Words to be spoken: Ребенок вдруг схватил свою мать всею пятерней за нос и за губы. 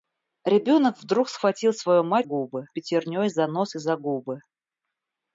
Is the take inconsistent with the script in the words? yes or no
yes